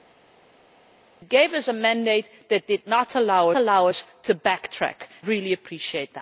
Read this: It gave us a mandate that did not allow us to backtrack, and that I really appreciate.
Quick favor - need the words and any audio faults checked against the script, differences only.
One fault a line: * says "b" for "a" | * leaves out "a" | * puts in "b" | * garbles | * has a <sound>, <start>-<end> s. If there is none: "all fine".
* puts in "allow"
* leaves out "and that I"